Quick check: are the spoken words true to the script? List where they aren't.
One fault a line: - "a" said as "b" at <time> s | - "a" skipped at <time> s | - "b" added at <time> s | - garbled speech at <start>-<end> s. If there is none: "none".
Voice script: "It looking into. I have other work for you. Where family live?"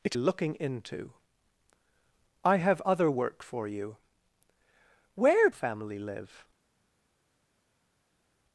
none